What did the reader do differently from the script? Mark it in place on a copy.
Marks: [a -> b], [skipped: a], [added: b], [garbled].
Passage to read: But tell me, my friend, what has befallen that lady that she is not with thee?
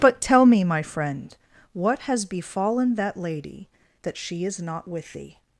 But tell me, my friend, what has befallen that lady that she is not with thee?